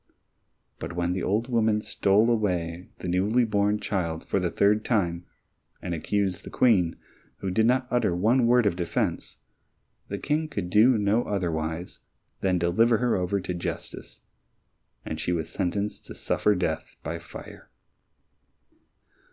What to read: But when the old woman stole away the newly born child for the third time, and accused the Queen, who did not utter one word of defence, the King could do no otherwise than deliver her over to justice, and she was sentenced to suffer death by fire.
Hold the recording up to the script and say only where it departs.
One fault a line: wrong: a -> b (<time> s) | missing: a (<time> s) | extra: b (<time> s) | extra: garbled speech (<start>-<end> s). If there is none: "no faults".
no faults